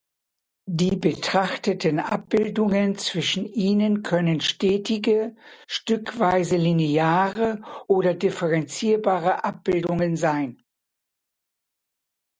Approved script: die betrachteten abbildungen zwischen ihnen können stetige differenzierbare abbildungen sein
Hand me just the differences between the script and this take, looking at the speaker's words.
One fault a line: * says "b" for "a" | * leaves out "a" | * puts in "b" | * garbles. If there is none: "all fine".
* puts in "stückweise lineare oder"